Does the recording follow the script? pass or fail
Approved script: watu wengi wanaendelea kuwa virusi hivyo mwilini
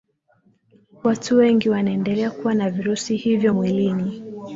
fail